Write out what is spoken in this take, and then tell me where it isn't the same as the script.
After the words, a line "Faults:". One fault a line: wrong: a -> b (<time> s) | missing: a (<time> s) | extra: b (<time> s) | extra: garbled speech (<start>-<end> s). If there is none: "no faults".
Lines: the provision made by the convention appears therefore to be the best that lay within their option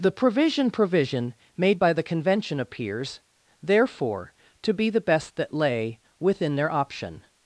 the provision provision made by the convention appears therefore to be the best that lay within their option
Faults:
extra: provision (0.7 s)